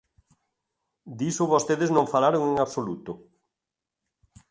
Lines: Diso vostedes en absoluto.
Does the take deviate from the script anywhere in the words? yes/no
yes